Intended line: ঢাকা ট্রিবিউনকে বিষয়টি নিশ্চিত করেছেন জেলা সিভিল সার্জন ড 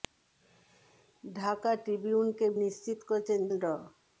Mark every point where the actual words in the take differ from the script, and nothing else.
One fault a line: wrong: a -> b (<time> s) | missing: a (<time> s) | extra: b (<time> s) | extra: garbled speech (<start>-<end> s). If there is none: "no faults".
missing: বিষয়টি (2.5 s)
missing: জেলা সিভিল সার্জন (3.4 s)